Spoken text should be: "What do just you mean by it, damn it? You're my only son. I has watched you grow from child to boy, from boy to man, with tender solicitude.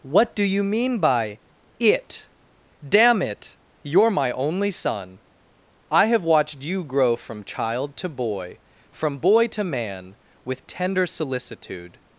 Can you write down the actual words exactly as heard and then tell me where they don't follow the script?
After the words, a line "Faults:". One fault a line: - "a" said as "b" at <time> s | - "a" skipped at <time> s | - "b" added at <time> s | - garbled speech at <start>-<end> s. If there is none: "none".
"What do you mean by it, damn it? You're my only son. I have watched you grow from child to boy, from boy to man, with tender solicitude.
Faults:
- "just" skipped at 0.4 s
- "has" said as "have" at 6.1 s